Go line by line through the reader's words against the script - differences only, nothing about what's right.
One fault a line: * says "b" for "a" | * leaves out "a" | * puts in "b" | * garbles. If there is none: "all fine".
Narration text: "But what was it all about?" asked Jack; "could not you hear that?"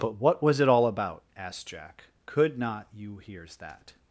* says "hears" for "hear"